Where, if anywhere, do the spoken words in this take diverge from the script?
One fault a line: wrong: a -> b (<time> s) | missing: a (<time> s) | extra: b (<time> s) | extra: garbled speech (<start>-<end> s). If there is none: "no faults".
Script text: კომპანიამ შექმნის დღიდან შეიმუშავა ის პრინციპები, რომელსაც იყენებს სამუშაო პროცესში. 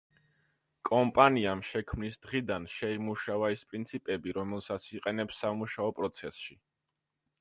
no faults